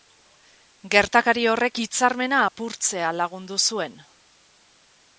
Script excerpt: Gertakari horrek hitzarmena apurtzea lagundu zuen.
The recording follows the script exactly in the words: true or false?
true